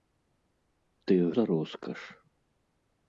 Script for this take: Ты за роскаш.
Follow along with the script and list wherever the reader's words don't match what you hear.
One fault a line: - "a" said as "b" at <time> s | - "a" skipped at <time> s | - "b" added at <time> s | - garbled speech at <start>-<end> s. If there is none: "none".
none